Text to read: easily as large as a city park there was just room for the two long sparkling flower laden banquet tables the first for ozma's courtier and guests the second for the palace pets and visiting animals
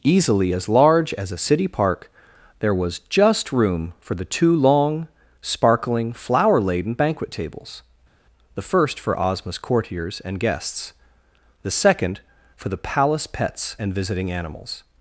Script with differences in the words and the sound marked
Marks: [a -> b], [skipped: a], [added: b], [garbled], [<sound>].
easily as large as a city park there was just room for the two long sparkling flower laden banquet tables the first for ozma's [courtier -> courtiers] and guests the second for the palace pets and visiting animals